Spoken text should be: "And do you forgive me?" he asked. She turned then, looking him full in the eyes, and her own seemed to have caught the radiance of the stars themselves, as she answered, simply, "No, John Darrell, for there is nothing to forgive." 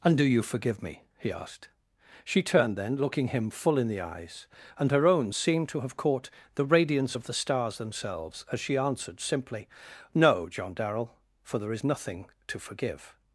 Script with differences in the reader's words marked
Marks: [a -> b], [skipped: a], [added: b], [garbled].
"And do you forgive me?" he asked. She turned then, looking him full in the eyes, and her own seemed to have caught the radiance of the stars themselves, as she answered, simply, "No, John Darrell, for there is nothing to forgive."